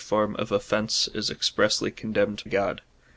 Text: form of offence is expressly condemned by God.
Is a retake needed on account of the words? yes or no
yes